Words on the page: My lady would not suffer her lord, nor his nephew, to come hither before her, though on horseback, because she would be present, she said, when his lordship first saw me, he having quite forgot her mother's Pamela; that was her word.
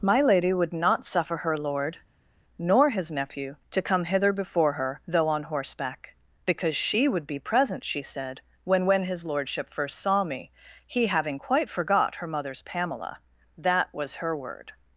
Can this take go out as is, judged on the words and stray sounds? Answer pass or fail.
fail